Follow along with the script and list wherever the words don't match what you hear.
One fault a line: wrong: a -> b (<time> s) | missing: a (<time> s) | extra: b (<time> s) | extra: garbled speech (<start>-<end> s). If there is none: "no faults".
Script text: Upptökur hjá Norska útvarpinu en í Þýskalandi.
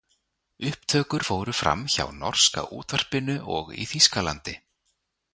extra: fóru fram (1.3 s)
wrong: en -> og (3.6 s)